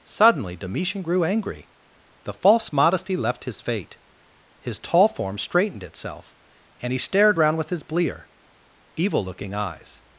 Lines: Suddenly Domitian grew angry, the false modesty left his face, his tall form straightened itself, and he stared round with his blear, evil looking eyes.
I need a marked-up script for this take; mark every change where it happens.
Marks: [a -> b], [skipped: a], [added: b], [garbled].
Suddenly Domitian grew angry, the false modesty left his [face, -> fate] his tall form straightened itself, and he stared round with his blear, evil looking eyes.